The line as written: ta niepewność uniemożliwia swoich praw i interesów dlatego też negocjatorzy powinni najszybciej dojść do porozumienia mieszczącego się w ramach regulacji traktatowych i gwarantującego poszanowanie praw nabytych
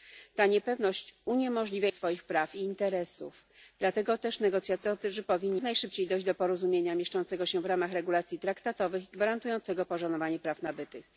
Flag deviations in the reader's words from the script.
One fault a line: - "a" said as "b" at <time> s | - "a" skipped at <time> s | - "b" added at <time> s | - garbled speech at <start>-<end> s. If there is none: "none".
none